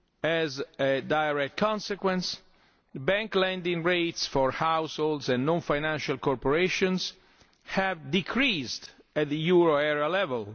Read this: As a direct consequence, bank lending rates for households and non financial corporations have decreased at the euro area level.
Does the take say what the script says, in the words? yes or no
yes